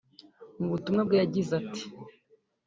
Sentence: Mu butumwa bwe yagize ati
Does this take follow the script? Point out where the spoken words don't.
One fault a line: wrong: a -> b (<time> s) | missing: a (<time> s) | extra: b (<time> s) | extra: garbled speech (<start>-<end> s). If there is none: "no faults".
no faults